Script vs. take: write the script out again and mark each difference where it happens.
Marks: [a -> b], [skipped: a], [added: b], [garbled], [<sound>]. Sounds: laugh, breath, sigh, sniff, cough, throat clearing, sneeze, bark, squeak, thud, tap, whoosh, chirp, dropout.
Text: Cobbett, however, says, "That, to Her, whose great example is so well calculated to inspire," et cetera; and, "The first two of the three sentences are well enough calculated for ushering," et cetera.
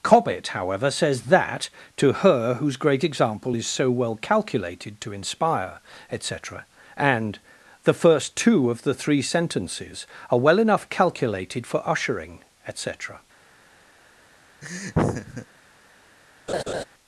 Cobbett, however, says, "That, to Her, whose great example is so well calculated to inspire," et cetera; and, "The first two of the three sentences are well enough calculated for ushering," et cetera. [laugh] [laugh]